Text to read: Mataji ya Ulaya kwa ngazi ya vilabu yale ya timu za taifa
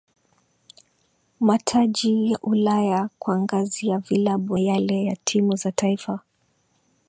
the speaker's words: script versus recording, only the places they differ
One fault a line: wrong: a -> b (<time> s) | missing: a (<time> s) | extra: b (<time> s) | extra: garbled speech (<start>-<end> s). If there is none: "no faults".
no faults